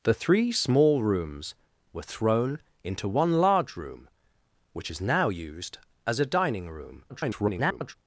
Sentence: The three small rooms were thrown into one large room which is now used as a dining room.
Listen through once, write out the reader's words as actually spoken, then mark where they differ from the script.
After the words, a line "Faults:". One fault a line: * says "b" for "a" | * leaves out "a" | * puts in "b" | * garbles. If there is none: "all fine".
The three small rooms were thrown into one large room which is now used as a dining room. [garbled]
Faults:
* garbles